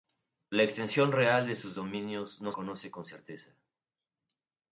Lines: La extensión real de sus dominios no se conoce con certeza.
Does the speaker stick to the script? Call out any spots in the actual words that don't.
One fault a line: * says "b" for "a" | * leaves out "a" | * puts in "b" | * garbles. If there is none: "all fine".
* leaves out "se"